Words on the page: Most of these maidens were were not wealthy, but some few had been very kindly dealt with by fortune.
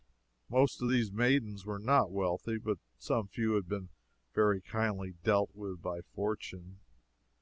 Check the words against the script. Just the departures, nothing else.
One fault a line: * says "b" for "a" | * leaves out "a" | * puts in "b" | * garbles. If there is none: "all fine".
* leaves out "were"